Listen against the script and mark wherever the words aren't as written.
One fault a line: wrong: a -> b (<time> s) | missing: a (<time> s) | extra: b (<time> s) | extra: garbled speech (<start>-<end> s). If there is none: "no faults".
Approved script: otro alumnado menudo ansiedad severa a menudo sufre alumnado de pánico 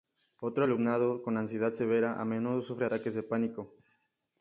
wrong: menudo -> con (1.2 s)
wrong: alumnado -> ataques (2.8 s)